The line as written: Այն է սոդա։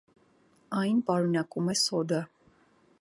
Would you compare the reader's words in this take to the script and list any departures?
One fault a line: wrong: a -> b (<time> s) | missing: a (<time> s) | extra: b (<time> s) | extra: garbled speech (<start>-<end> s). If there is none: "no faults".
extra: պարունակում (1.1 s)